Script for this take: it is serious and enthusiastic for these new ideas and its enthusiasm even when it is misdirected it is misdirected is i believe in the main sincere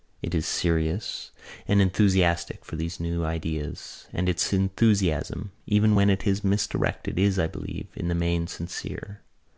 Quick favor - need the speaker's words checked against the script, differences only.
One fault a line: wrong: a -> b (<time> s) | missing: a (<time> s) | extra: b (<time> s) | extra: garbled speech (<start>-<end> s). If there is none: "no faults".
missing: it is misdirected (7.2 s)